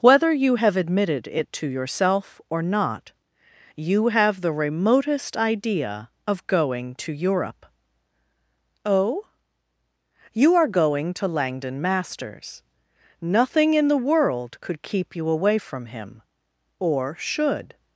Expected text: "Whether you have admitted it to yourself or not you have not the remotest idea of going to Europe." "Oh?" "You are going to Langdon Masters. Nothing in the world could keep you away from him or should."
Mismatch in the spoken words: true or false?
true